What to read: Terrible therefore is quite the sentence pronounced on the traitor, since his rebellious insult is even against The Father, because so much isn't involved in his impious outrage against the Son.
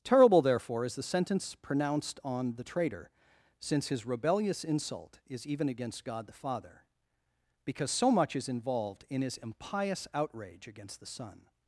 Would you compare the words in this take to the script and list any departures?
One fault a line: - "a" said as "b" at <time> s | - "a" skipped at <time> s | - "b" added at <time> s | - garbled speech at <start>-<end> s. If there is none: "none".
- "quite" skipped at 0.9 s
- "God" added at 6.0 s
- "isn't" said as "is" at 8.3 s